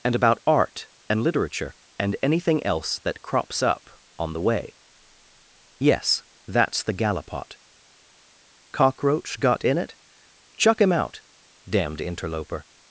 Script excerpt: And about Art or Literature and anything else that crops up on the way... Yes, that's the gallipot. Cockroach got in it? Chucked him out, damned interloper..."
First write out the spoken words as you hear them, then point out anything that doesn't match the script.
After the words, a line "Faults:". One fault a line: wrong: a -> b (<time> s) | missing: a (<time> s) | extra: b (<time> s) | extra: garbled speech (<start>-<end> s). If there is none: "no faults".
And about Art and Literature and anything else that crops up on the way... Yes, that's the gallipot. Cockroach got in it? Chuck him out, damned interloper..."
Faults:
wrong: or -> and (1.1 s)
wrong: Chucked -> Chuck (10.6 s)